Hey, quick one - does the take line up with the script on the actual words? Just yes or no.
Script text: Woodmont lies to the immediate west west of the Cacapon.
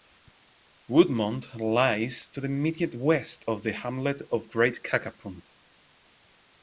no